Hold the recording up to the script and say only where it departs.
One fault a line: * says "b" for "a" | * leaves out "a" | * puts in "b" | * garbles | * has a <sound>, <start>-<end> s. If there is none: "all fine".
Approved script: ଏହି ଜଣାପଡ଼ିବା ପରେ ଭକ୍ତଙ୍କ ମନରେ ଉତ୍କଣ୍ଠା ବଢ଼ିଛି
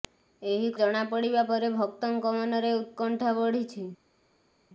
all fine